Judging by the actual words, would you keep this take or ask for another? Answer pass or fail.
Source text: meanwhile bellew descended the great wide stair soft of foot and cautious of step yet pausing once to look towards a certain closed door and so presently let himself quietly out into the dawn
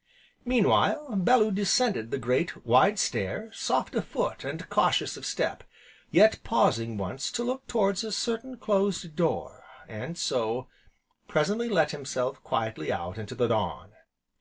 pass